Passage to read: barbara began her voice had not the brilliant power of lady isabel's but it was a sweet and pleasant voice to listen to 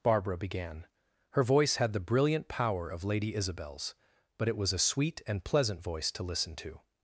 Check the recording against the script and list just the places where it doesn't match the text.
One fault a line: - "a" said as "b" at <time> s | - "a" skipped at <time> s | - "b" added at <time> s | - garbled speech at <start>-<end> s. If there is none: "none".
- "not" skipped at 1.9 s